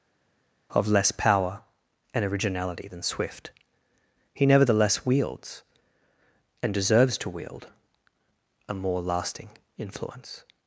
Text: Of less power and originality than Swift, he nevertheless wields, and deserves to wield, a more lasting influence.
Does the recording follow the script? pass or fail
pass